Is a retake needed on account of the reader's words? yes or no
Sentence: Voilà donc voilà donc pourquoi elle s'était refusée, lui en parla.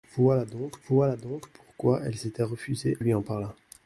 no